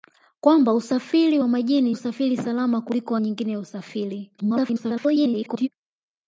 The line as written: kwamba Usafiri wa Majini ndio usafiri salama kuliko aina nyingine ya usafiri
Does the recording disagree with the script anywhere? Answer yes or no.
yes